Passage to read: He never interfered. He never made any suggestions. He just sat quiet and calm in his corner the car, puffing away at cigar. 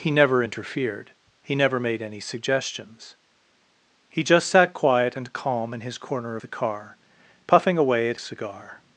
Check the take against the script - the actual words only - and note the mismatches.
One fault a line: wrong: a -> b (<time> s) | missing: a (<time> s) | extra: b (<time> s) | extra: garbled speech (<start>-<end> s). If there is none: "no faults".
no faults